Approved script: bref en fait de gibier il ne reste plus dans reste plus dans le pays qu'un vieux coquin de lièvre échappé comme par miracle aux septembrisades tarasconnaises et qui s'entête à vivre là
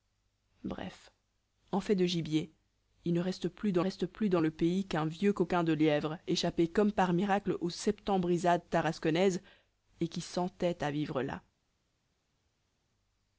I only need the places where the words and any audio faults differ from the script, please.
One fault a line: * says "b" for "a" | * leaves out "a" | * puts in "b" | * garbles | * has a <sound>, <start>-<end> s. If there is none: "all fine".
all fine